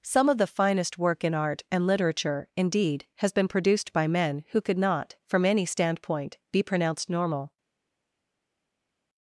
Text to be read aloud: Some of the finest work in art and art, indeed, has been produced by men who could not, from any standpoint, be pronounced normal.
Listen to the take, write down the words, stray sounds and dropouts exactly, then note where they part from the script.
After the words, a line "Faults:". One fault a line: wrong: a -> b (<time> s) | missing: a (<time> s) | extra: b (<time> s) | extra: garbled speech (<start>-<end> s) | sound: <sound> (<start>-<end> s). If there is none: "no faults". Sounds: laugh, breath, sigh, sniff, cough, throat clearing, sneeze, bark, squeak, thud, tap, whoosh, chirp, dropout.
Some of the finest work in art and literature, indeed, has been produced by men who could not, from any standpoint, be pronounced normal.
Faults:
wrong: art -> literature (1.9 s)